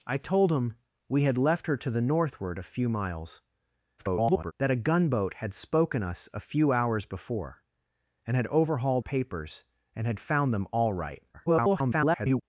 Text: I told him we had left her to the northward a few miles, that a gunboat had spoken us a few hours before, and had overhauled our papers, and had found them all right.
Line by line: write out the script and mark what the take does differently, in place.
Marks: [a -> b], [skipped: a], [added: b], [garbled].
I told him we had left her to the northward a few miles, [garbled] that a gunboat had spoken us a few hours before, and had overhauled [skipped: our] papers, and had found them all right. [garbled]